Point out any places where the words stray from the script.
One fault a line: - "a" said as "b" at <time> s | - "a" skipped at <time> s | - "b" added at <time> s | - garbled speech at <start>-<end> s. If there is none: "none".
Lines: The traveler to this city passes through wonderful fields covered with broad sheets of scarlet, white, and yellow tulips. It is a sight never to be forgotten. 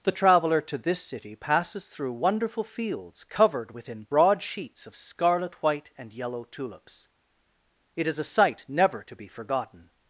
- "with" said as "within" at 3.7 s